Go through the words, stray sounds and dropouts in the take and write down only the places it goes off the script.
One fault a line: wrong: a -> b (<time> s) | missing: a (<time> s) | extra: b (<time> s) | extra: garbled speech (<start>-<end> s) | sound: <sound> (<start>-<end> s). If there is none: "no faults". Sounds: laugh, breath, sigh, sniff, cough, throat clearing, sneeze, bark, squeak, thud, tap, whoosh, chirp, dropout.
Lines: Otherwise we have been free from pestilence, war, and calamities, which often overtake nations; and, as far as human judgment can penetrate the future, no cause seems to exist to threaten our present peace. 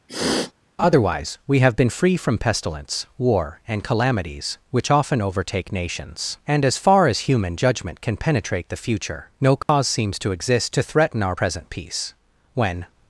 sound: sniff (0.1-0.5 s)
sound: dropout (9.6-9.7 s)
extra: When (12.6 s)